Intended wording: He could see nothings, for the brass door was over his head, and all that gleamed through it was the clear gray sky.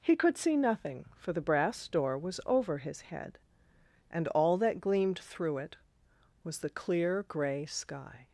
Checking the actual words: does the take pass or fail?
fail